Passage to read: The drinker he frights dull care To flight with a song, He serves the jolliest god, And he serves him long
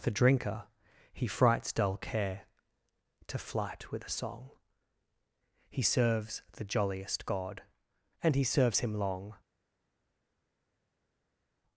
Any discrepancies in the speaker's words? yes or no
no